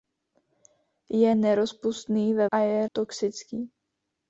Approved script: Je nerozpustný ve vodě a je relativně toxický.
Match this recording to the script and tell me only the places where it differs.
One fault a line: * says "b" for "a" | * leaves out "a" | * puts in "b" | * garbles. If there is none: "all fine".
* leaves out "vodě"
* leaves out "relativně"